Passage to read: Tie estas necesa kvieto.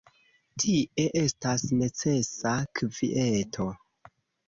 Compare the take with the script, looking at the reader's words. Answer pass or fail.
pass